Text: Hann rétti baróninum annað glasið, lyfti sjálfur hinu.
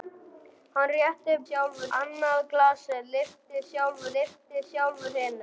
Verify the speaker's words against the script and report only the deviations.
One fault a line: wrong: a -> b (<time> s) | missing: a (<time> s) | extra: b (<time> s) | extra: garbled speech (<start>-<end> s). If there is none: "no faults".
wrong: baróninum -> sjálfur (1.5 s)
extra: lyfti sjálfur (4.2 s)